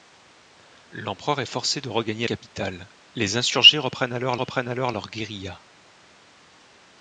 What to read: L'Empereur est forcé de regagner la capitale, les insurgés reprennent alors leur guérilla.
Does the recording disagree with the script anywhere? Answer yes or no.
yes